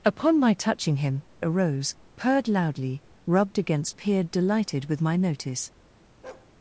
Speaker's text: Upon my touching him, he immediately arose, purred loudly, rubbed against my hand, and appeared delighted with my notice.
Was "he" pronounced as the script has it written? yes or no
no